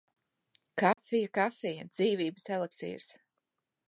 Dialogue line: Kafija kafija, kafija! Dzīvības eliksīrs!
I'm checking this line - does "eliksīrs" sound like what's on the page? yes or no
yes